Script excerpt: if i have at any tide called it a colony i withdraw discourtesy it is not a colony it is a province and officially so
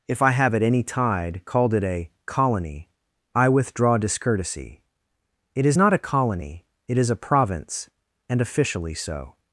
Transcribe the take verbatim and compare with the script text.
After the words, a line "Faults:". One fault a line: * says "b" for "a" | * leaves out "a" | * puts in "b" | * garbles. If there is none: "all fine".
if i have at any tide called it a colony i withdraw discourtesy it is not a colony it is a province and officially so
Faults:
all fine